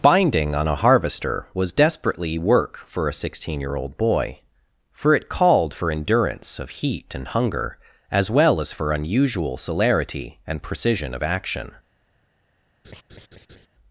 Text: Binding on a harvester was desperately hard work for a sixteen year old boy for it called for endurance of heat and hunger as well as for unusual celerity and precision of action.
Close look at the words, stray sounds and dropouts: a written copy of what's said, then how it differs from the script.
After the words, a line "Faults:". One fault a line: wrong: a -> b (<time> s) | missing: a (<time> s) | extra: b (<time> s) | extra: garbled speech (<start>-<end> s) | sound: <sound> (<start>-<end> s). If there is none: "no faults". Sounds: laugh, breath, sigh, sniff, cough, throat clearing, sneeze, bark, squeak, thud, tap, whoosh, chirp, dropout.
Binding on a harvester was desperately work for a sixteen year old boy for it called for endurance of heat and hunger as well as for unusual celerity and precision of action.
Faults:
missing: hard (2.4 s)
sound: laugh (12.8-13.7 s)